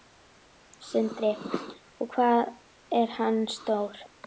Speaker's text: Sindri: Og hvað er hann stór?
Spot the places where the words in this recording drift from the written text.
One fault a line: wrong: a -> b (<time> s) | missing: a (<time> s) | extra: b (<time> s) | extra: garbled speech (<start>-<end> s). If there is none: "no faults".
no faults